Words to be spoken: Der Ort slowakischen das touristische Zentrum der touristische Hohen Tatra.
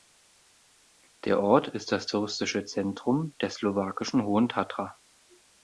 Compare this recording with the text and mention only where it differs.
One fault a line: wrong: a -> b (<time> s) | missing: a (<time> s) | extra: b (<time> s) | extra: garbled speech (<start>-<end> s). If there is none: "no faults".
wrong: slowakischen -> ist (1.7 s)
wrong: touristische -> slowakischen (3.5 s)